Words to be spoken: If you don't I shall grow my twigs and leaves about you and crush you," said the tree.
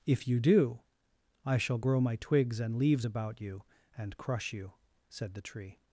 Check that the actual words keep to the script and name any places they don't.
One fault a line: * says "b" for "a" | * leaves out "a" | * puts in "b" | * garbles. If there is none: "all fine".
* says "do" for "don't"